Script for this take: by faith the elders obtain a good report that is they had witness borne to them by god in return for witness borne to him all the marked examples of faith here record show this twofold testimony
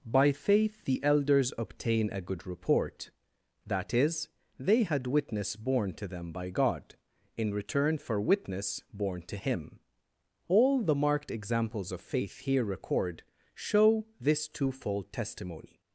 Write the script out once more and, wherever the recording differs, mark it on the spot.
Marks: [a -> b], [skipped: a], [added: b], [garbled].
by faith the elders obtain a good report that is they had witness borne to them by god in return for witness borne to him all the marked examples of faith here record show this twofold testimony